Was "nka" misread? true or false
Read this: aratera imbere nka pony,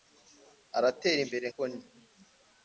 true